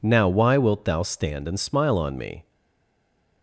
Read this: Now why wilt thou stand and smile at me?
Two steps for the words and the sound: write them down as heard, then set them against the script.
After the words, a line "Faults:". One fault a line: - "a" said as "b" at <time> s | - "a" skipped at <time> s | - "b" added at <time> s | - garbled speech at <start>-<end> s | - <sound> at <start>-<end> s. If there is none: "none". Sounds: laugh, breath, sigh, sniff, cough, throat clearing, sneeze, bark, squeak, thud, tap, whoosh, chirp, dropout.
Now why wilt thou stand and smile on me?
Faults:
- "at" said as "on" at 2.0 s